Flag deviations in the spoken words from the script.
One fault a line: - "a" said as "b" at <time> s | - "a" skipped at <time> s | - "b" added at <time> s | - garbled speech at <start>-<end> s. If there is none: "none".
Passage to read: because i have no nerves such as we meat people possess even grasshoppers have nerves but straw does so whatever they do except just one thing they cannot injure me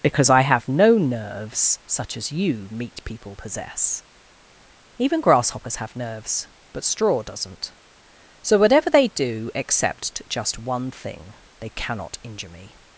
- "we" said as "you" at 2.3 s
- "does" said as "doesn't" at 7.2 s